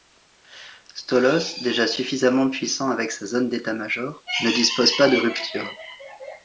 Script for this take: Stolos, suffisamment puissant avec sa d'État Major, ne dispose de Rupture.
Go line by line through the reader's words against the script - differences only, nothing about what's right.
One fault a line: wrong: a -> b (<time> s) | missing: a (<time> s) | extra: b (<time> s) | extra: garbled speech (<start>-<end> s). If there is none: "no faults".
extra: déjà (1.6 s)
extra: zone (3.3 s)
extra: pas (5.0 s)